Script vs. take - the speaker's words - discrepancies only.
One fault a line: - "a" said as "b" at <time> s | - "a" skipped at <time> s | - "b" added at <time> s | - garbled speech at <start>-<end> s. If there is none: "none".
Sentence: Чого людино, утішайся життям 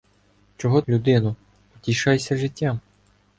none